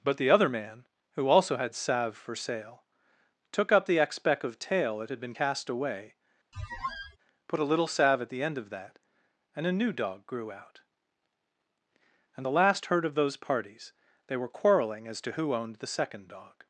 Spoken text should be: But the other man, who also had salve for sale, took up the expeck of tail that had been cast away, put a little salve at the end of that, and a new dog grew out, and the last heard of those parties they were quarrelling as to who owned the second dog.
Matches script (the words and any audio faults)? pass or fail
fail